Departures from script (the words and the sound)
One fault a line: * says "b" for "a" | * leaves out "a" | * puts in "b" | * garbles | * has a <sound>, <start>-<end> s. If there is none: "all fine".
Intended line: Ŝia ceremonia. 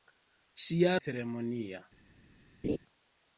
* has a laugh, 2.6-2.8 s